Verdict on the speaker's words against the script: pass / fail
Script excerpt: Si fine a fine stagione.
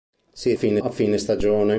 pass